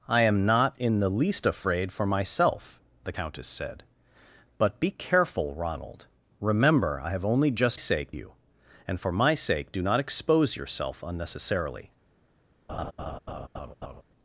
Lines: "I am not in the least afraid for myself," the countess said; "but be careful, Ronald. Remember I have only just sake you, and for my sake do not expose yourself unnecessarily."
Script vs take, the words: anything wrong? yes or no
no